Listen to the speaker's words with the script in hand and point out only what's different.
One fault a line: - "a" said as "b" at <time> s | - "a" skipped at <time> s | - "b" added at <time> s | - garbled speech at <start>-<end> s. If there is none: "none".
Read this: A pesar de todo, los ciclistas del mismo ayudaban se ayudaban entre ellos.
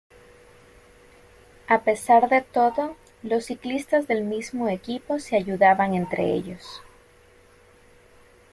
- "ayudaban" said as "equipo" at 4.7 s